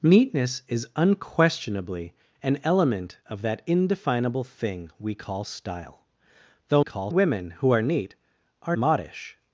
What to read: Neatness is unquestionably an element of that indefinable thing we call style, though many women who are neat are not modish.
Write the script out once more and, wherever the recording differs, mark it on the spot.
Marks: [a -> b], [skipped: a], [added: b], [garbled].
Neatness is unquestionably an element of that indefinable thing we call style, though [many -> call] women who are neat are [skipped: not] modish.